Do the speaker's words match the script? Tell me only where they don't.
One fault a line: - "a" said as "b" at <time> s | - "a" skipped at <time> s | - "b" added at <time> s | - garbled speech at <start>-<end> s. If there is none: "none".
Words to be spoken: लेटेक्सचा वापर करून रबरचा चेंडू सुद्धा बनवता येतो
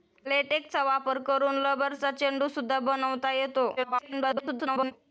- garbled speech at 3.8-4.9 s